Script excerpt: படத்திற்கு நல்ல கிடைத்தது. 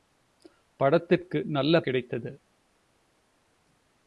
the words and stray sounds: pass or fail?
pass